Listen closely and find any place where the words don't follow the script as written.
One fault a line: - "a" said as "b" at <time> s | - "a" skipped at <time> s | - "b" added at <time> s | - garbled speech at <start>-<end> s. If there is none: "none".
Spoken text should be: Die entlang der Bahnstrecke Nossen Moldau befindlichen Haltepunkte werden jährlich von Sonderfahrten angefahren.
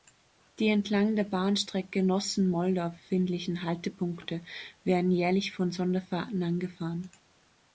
none